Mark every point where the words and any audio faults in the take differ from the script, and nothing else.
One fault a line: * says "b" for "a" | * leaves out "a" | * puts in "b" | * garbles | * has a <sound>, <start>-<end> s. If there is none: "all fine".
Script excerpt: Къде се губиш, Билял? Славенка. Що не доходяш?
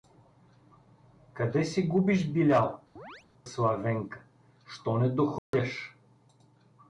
* has a chirp, 3.0-3.3 s
* has a dropout, 5.4-5.5 s